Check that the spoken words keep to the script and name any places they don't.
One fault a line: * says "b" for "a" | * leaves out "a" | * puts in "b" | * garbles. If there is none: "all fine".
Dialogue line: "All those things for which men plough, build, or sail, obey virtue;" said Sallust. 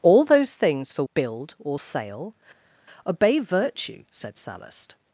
* leaves out "which men plough"